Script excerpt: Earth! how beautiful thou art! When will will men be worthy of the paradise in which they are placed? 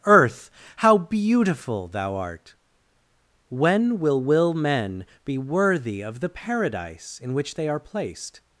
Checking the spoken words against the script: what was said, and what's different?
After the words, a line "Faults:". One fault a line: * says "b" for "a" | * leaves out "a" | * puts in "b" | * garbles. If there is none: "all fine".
Earth! how beautiful thou art! When will will men be worthy of the paradise in which they are placed?
Faults:
all fine